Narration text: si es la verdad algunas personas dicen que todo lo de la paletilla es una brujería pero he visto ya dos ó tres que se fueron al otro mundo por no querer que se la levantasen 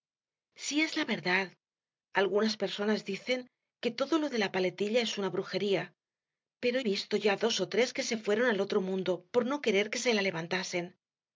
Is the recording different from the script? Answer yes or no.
no